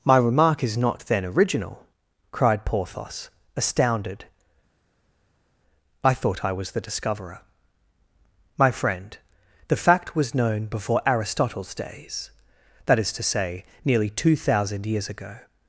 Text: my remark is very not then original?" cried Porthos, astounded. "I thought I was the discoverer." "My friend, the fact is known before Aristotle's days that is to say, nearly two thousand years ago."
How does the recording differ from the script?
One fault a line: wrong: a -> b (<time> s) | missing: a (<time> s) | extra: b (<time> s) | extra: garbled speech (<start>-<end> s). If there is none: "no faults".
missing: very (0.8 s)
wrong: is -> was (10.1 s)